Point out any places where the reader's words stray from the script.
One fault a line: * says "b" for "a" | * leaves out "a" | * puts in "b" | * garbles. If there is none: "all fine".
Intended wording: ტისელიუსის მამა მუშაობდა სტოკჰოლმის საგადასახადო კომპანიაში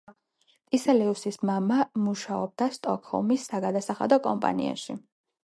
all fine